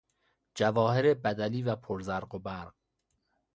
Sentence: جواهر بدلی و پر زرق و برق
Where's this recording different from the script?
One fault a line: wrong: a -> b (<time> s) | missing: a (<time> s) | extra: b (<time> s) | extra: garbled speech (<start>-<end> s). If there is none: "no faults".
no faults